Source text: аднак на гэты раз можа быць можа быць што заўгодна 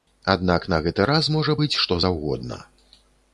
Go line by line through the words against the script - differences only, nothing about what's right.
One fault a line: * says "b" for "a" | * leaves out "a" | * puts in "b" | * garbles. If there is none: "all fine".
* leaves out "можа быць"